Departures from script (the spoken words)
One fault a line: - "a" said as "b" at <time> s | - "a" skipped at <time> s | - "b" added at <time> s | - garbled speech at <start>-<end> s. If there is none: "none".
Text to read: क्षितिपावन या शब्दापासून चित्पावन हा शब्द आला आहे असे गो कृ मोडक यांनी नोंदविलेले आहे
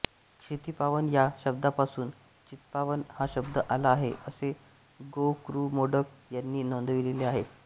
none